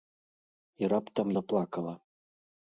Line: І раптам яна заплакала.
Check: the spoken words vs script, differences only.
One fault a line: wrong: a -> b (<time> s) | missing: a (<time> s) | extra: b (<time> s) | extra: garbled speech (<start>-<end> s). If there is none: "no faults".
missing: яна (1.3 s)